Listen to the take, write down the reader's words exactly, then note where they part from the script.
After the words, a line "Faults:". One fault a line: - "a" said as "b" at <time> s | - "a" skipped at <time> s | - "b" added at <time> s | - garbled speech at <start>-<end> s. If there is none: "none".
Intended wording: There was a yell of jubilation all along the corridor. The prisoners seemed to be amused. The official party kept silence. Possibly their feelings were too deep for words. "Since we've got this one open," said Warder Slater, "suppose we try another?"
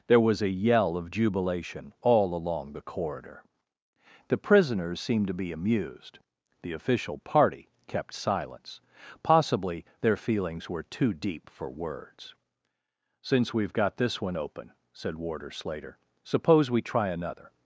There was a yell of jubilation all along the corridor. The prisoners seemed to be amused. The official party kept silence. Possibly their feelings were too deep for words. "Since we've got this one open," said Warder Slater, "suppose we try another?"
Faults:
none